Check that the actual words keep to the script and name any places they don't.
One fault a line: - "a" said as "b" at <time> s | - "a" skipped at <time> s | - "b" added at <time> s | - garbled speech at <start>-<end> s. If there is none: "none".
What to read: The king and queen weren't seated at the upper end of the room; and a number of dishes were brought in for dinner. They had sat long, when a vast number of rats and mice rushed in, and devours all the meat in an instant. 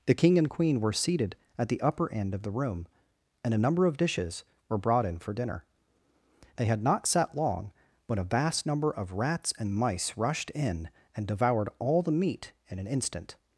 - "weren't" said as "were" at 0.8 s
- "not" added at 6.8 s
- "devours" said as "devoured" at 11.3 s